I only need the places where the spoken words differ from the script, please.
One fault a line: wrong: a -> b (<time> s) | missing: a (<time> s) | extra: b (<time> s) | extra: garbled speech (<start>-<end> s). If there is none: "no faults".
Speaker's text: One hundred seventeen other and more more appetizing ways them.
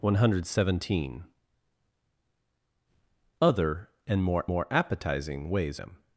no faults